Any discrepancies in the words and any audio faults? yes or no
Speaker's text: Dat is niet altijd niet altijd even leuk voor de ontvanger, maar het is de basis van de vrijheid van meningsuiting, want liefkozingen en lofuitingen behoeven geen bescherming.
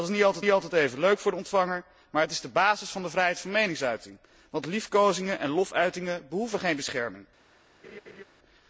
yes